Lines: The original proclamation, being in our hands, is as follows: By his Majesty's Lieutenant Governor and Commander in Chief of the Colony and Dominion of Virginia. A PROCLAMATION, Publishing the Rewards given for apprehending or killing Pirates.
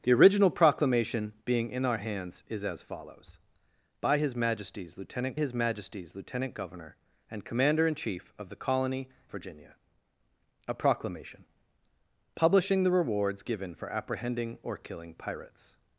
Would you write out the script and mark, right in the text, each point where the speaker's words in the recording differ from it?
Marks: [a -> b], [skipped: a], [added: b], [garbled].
The original proclamation, being in our hands, is as follows: By his Majesty's Lieutenant [added: his Majesty's Lieutenant] Governor and Commander in Chief of the Colony [skipped: and Dominion of] Virginia. A PROCLAMATION, Publishing the Rewards given for apprehending or killing Pirates.